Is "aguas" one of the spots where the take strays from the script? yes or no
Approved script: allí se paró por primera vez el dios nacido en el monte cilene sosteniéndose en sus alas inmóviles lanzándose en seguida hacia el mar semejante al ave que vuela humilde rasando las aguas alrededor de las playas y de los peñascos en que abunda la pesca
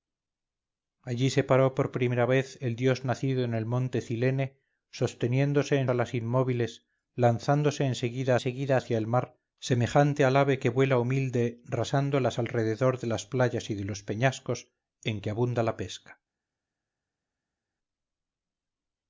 yes